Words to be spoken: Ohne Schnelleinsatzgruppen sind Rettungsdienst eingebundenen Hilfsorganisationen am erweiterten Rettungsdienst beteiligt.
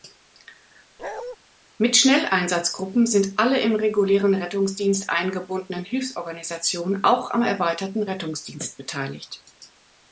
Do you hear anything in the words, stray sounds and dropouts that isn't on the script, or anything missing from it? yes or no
yes